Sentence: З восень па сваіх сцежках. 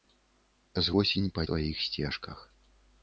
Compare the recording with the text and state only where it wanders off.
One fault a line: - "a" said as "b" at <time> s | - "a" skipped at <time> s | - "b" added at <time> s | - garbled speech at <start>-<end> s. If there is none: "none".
none